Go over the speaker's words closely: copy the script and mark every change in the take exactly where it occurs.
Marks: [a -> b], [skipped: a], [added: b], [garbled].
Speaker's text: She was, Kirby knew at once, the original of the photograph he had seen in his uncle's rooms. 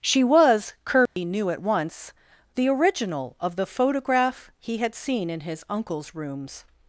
She was, Kirby knew at once, the original of the photograph he had seen in his uncle's rooms.